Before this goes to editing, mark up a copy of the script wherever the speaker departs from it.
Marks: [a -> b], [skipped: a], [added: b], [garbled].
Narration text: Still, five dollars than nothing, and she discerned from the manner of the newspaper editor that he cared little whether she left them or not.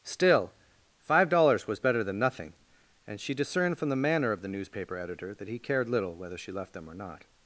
Still, five dollars [added: was better] than nothing, and she discerned from the manner of the newspaper editor that he cared little whether she left them or not.